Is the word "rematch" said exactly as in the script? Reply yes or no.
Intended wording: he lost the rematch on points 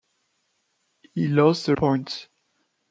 no